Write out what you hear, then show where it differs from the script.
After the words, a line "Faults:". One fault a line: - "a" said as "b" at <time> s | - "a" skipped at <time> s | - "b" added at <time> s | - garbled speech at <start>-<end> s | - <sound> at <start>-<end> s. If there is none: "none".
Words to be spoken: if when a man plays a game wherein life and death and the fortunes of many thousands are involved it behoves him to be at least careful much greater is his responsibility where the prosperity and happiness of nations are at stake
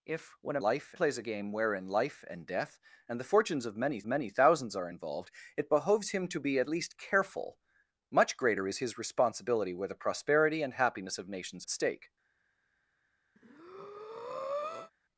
if when a life plays a game wherein life and death and the fortunes of many many thousands are involved it behoves him to be at least careful much greater is his responsibility where the prosperity and happiness of nations at stake
Faults:
- "man" said as "life" at 0.6 s
- "many" added at 4.1 s
- "are" skipped at 11.7 s
- breath at 13.4-14.9 s